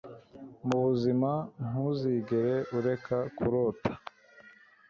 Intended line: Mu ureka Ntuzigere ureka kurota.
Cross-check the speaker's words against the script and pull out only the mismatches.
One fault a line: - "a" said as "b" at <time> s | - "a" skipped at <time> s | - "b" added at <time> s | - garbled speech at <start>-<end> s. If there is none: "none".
- "ureka" said as "buzima" at 0.8 s